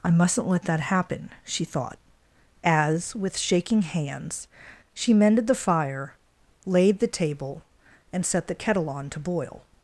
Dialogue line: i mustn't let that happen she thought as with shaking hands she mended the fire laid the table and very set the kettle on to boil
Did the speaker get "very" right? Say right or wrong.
wrong